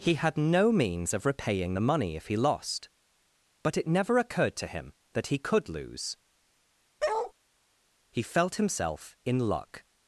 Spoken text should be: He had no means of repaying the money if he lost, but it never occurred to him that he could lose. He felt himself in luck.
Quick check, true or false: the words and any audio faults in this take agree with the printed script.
false